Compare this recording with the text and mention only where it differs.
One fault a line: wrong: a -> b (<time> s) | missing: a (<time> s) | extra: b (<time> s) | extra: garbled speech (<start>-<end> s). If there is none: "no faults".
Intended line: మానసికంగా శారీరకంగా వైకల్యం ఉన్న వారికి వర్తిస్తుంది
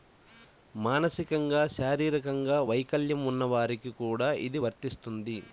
extra: కూడా ఇది (4.0 s)